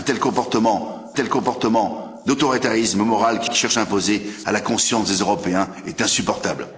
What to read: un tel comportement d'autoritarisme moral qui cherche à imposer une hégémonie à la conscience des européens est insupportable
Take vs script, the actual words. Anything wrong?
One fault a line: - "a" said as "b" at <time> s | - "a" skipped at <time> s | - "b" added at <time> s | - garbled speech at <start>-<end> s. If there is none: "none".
- "tel comportement" added at 1.1 s
- "qui" added at 3.5 s
- "une hégémonie" skipped at 4.2 s